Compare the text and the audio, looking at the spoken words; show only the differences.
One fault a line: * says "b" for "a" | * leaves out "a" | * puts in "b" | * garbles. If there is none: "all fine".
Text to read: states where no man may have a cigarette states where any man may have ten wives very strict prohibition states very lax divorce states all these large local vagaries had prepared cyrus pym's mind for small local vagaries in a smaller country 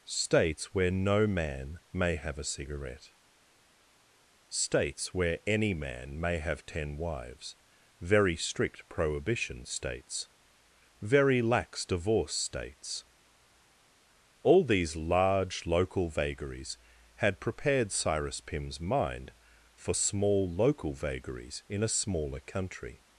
all fine